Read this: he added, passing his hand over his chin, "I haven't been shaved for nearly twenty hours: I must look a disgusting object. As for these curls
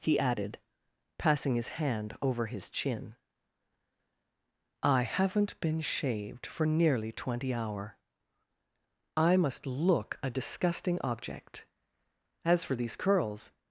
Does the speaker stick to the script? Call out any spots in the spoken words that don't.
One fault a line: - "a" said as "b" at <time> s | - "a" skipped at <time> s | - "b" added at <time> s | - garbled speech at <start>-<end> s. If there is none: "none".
- "hours" said as "hour" at 7.5 s